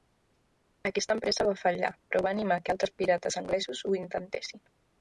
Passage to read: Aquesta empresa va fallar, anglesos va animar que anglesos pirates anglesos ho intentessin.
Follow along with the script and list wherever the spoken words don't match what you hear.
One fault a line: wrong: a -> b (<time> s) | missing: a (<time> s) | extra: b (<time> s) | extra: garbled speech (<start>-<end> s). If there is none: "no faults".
wrong: anglesos -> però (2.1 s)
wrong: anglesos -> altres (2.8 s)